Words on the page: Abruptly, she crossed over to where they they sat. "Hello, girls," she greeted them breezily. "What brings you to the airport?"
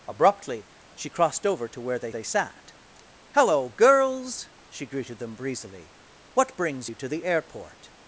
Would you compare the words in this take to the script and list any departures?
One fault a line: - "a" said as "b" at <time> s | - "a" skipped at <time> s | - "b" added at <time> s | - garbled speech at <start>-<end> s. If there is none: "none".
none